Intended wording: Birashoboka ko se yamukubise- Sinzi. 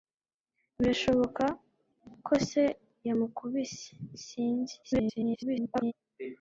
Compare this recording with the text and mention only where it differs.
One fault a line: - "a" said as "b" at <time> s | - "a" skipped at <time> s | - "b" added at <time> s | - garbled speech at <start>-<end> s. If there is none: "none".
- garbled speech at 4.8-5.9 s